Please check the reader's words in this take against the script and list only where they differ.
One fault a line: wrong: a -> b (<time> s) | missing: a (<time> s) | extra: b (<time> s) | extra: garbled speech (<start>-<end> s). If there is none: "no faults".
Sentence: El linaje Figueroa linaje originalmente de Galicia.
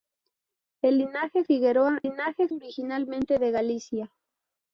no faults